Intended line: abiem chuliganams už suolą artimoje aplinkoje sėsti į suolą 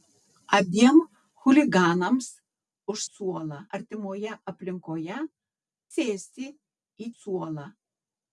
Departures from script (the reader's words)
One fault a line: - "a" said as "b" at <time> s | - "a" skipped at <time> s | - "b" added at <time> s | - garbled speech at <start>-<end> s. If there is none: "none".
none